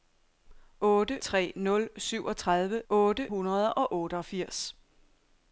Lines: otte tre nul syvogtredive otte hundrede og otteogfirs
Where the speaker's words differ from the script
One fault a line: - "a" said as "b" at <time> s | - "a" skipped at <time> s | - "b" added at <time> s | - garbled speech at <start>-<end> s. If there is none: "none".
none